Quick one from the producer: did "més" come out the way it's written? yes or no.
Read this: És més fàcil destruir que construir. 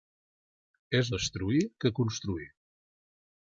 no